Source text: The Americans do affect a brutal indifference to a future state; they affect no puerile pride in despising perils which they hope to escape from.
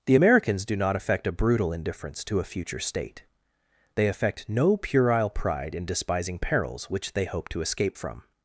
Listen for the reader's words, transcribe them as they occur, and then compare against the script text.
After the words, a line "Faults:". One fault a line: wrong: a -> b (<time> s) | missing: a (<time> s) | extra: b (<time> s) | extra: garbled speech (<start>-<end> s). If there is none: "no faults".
The Americans do not affect a brutal indifference to a future state; they affect no puerile pride in despising perils which they hope to escape from.
Faults:
extra: not (0.8 s)